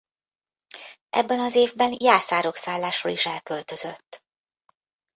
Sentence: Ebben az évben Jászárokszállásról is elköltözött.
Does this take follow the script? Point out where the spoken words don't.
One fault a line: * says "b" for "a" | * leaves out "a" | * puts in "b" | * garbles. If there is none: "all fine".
all fine